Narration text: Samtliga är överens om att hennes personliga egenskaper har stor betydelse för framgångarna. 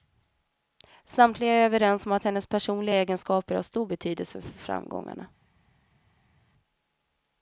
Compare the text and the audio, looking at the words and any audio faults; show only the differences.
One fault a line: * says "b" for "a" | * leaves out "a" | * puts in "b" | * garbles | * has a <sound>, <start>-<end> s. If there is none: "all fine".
all fine